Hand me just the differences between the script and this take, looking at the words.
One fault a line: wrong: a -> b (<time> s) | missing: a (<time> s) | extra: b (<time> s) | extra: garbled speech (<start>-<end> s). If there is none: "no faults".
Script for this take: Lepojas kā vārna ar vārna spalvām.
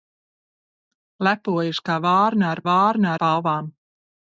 no faults